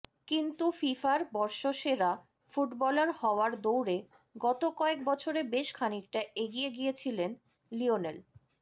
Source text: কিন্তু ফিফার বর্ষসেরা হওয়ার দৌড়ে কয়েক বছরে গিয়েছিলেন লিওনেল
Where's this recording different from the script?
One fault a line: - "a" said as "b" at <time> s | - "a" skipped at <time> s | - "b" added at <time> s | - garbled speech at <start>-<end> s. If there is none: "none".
- "ফুটবলার" added at 2.5 s
- "গত" added at 4.3 s
- "বেশ খানিকটা এগিয়ে" added at 5.5 s